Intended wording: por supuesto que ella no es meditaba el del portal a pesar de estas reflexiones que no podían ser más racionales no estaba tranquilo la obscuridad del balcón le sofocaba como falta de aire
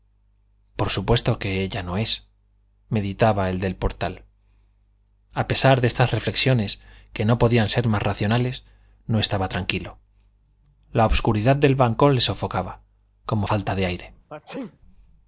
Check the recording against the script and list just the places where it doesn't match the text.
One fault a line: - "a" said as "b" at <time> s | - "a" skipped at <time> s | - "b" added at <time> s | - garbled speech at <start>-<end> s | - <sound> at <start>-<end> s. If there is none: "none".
- sneeze at 14.3-14.8 s